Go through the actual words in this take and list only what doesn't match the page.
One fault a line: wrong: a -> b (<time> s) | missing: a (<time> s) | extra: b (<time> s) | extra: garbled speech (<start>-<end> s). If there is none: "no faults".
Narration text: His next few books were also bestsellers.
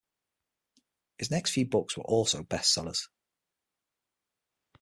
no faults